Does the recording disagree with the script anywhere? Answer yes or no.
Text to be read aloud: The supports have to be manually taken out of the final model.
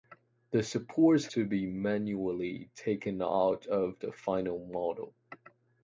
yes